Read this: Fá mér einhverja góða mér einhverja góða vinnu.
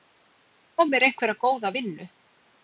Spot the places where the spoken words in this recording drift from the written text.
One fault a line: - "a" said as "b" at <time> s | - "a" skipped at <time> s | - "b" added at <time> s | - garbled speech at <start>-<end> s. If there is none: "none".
- "mér einhverja góða" skipped at 1.7 s